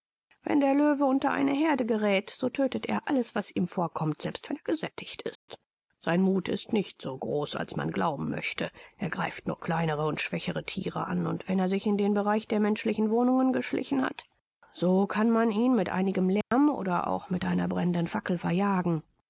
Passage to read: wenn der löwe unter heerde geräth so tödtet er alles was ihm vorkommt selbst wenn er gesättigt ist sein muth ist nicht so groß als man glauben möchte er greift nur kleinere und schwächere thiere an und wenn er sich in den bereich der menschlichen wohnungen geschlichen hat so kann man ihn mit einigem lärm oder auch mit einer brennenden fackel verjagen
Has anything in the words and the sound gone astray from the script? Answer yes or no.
yes